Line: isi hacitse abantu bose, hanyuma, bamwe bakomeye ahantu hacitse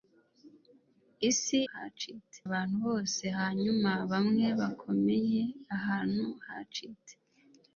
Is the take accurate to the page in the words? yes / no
yes